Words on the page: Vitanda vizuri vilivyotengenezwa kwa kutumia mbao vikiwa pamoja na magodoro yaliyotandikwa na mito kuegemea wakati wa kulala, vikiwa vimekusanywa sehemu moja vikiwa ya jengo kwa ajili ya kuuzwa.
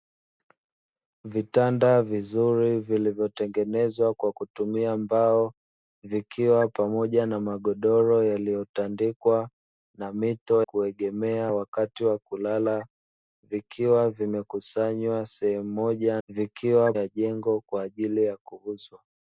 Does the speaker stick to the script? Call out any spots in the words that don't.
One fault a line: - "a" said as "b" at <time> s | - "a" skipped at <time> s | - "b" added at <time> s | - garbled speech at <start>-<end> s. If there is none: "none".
none